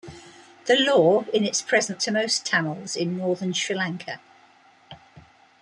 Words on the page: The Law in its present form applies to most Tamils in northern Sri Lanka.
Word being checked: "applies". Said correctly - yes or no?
no